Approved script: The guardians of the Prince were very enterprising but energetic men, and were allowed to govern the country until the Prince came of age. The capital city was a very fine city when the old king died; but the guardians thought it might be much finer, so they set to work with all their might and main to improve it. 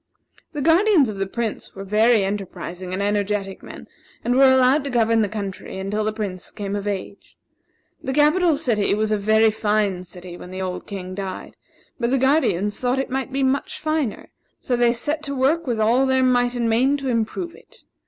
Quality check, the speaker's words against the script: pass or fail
fail